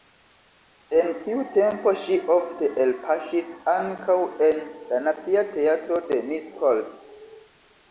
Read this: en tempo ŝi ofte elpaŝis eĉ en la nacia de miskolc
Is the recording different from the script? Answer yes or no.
yes